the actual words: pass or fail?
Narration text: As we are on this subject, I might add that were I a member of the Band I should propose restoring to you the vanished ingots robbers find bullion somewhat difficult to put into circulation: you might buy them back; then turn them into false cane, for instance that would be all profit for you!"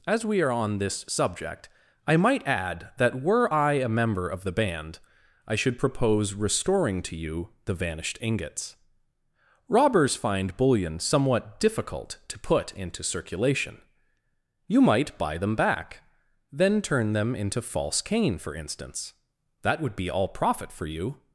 pass